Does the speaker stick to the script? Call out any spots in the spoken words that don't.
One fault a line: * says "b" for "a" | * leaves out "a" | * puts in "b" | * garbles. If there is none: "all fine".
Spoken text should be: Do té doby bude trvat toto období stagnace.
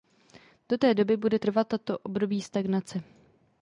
all fine